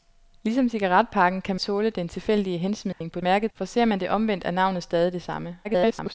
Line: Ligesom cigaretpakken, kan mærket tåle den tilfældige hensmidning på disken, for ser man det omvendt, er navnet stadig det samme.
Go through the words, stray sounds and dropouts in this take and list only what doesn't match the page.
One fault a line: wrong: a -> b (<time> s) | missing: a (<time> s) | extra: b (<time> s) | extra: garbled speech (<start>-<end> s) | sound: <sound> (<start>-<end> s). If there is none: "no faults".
missing: mærket (1.6 s)
sound: dropout (2.9-3.0 s)
wrong: disken -> mærket (3.2 s)
extra: garbled speech (5.6-6.1 s)